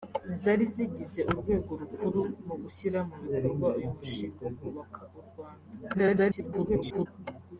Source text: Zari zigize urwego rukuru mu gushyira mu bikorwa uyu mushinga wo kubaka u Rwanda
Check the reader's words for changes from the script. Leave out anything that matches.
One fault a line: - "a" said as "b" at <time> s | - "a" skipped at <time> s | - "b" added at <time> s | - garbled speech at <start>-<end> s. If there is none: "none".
- garbled speech at 5.9-7.1 s